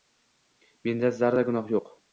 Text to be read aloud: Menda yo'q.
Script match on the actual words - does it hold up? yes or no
no